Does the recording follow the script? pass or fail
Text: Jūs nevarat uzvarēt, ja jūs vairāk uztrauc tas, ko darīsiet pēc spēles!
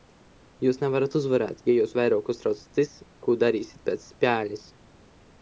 pass